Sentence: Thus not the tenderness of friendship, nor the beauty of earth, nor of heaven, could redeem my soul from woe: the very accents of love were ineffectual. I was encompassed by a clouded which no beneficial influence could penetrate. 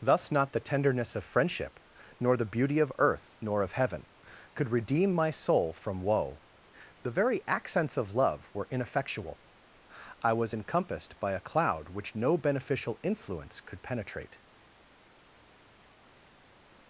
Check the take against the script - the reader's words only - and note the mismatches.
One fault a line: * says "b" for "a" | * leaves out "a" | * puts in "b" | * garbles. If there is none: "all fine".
* says "cloud" for "clouded"